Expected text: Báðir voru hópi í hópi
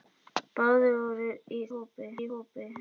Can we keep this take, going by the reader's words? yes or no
yes